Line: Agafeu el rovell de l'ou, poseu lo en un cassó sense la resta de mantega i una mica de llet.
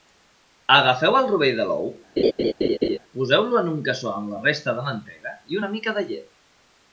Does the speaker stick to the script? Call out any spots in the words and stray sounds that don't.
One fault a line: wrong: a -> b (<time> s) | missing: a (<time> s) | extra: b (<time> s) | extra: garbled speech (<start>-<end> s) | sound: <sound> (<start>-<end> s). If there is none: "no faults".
sound: laugh (2.2-3.0 s)
wrong: sense -> amb (4.1 s)